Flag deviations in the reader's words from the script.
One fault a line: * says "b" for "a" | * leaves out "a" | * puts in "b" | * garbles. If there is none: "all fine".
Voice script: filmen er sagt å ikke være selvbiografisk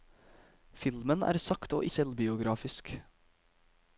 * leaves out "ikke være"